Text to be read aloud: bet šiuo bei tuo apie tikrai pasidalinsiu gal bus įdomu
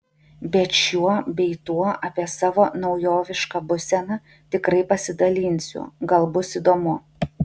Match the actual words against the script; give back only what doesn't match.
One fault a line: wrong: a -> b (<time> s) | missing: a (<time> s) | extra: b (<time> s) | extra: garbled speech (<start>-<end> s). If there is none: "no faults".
extra: savo naujovišką būseną (2.4 s)